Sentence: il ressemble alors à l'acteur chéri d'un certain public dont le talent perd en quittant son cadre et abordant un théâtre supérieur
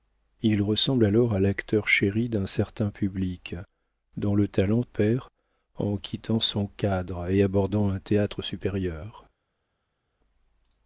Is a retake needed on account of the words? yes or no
no